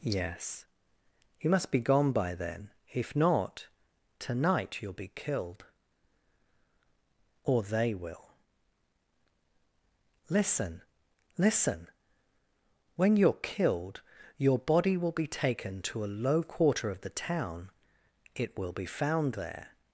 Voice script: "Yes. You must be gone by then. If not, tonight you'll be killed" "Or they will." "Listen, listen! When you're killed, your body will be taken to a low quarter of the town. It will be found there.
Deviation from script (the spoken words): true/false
false